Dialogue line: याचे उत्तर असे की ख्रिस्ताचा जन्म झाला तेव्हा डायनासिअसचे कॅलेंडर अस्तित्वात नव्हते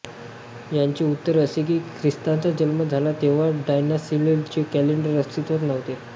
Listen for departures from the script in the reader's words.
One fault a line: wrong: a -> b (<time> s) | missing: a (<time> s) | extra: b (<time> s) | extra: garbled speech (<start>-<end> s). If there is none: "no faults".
no faults